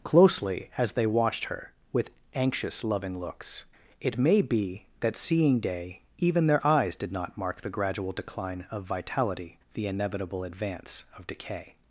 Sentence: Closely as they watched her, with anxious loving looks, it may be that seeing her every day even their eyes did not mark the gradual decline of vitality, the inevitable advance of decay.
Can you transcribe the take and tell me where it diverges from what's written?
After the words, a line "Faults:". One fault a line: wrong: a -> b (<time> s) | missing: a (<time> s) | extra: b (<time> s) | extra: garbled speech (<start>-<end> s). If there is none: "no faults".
Closely as they watched her, with anxious loving looks, it may be that seeing day even their eyes did not mark the gradual decline of vitality, the inevitable advance of decay.
Faults:
missing: her every (5.6 s)